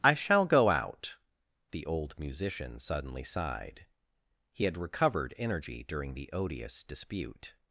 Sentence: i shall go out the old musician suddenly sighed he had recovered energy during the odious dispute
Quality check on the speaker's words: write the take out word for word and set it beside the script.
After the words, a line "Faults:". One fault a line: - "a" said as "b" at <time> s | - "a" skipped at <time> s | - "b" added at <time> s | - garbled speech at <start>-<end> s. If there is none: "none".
i shall go out the old musician suddenly sighed he had recovered energy during the odious dispute
Faults:
none